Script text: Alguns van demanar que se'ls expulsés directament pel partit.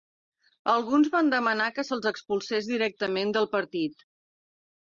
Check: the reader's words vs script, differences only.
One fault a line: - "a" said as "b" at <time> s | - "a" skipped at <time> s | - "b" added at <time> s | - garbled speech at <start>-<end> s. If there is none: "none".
- "pel" said as "del" at 3.4 s